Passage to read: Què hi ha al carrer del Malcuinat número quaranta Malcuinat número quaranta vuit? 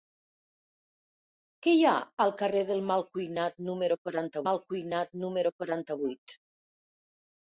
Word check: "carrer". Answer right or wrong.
right